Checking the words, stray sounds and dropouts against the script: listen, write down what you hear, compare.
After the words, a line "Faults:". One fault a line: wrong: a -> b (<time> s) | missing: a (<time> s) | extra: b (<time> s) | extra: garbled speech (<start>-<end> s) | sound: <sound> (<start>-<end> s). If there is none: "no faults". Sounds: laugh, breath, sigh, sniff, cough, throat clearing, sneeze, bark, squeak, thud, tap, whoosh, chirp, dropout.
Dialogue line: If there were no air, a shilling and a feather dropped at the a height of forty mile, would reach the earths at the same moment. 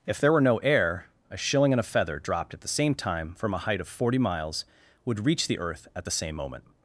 If there were no air, a shilling and a feather dropped at the same time from a height of forty miles, would reach the earth at the same moment.
Faults:
extra: same time from (2.7 s)
wrong: mile -> miles (4.2 s)
wrong: earths -> earth (5.6 s)